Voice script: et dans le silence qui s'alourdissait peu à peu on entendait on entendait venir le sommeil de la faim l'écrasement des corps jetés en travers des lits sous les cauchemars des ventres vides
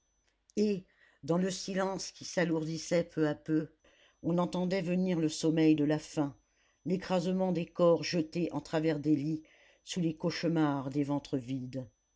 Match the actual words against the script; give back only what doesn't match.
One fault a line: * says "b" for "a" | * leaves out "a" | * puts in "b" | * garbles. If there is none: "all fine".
* leaves out "on entendait"